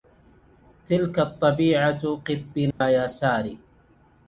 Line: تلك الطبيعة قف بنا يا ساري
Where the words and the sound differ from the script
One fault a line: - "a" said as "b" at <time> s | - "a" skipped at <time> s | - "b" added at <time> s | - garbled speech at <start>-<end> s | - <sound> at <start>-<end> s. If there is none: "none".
- dropout at 2.7-2.8 s